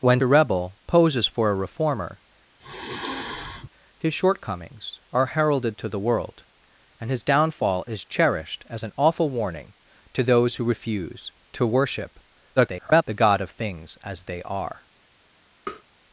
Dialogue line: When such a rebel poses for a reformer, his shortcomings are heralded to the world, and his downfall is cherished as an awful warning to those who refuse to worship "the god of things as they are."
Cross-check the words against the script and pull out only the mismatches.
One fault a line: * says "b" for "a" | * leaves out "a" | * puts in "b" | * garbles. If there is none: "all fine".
* leaves out "such"
* garbles